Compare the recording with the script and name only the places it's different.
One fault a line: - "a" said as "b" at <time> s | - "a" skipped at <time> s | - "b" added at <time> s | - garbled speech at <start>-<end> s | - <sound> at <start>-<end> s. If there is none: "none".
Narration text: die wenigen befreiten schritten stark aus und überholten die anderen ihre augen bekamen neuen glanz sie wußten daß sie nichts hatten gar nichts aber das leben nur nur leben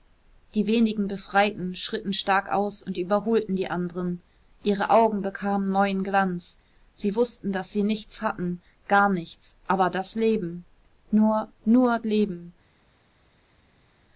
none